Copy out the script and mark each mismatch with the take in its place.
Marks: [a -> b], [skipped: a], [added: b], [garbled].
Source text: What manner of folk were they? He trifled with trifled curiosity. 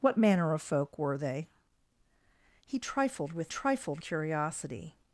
What manner of folk were they? He trifled with trifled curiosity.